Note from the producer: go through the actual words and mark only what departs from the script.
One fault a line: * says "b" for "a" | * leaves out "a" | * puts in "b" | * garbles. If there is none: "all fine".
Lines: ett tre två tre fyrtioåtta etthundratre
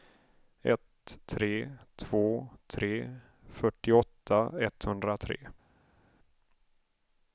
all fine